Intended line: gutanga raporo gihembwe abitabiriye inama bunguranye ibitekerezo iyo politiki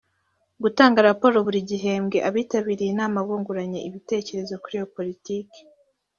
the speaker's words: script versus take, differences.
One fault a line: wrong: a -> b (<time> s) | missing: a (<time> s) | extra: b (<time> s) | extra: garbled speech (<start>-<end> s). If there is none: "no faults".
extra: buri (1.5 s)
extra: kuri (4.6 s)